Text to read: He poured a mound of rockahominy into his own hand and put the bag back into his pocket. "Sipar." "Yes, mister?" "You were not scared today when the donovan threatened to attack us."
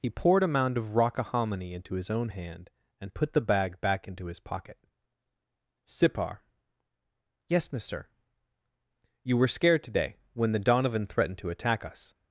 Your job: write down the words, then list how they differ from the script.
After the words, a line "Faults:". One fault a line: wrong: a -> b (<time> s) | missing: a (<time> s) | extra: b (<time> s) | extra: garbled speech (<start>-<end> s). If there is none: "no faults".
He poured a mound of rockahominy into his own hand and put the bag back into his pocket. "Sipar." "Yes, mister?" "You were scared today when the donovan threatened to attack us."
Faults:
missing: not (9.5 s)